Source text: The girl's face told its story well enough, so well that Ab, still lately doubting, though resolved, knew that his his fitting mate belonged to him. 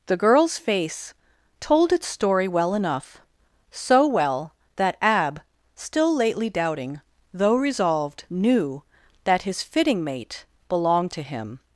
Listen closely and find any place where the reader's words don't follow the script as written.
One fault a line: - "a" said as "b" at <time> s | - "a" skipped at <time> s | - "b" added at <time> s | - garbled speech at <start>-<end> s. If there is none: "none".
- "his" skipped at 9.6 s